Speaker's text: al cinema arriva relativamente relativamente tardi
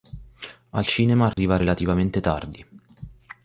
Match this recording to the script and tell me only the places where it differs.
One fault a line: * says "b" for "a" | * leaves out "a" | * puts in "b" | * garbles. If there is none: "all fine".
* leaves out "relativamente"